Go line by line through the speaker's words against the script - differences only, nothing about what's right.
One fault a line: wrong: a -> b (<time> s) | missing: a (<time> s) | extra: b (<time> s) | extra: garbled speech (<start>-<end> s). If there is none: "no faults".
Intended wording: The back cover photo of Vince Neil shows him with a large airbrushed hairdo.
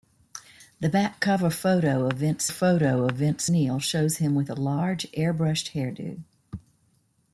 extra: photo of Vince (2.5 s)